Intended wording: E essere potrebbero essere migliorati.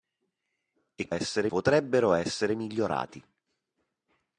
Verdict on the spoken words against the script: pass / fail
pass